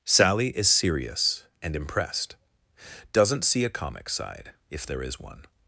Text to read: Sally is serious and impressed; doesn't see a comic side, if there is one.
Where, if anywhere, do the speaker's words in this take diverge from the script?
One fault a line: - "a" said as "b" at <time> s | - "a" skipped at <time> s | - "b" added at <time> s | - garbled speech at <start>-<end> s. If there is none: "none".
none